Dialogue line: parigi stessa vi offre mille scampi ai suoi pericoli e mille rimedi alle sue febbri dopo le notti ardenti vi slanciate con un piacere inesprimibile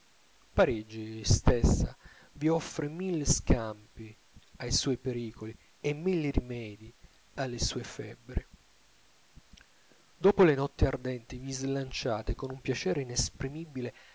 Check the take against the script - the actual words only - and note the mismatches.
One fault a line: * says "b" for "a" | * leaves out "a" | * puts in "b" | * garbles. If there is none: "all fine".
all fine